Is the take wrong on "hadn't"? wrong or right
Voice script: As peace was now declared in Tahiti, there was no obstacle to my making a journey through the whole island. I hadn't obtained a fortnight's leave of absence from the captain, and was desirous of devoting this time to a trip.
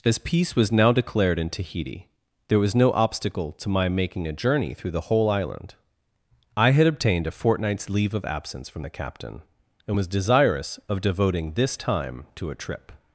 wrong